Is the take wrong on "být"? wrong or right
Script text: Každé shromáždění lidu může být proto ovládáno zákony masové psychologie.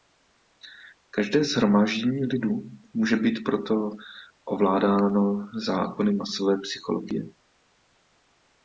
right